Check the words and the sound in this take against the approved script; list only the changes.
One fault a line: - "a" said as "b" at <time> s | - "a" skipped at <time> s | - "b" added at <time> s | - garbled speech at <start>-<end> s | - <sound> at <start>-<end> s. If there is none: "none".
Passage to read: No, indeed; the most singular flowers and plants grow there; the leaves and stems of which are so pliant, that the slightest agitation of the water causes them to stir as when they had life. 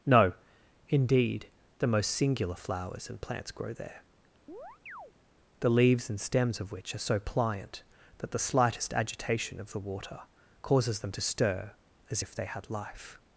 - chirp at 4.5-5.1 s
- "when" said as "if" at 12.2 s